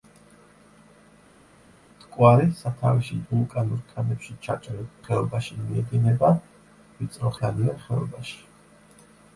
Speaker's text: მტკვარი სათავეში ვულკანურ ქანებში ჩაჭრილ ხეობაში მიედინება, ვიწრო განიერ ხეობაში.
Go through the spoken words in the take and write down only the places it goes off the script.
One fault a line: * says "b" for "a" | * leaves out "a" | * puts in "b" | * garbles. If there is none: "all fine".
all fine